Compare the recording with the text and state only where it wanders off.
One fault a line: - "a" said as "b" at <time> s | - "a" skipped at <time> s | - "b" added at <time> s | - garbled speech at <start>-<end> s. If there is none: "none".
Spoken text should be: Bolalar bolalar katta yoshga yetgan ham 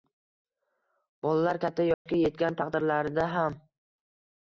- "bolalar" skipped at 1.6 s
- "taqdirlarida" added at 2.6 s